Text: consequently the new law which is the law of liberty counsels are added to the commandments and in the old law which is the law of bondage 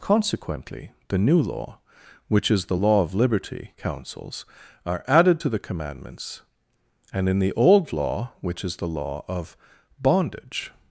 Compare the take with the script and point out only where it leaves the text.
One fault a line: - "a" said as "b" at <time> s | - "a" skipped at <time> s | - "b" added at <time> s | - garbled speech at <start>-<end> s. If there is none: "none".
none